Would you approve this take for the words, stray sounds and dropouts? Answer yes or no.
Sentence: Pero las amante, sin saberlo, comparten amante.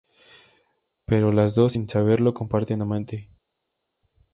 no